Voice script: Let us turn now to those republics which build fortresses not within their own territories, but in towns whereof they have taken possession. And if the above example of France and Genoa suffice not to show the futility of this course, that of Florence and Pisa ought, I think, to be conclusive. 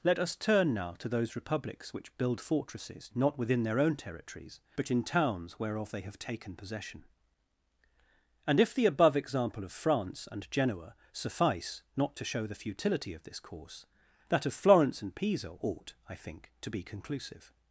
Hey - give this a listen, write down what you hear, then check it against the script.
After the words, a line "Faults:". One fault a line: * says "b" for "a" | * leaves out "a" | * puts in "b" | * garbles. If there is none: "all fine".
Let us turn now to those republics which build fortresses not within their own territories, but in towns whereof they have taken possession. And if the above example of France and Genoa suffice not to show the futility of this course, that of Florence and Pisa ought, I think, to be conclusive.
Faults:
all fine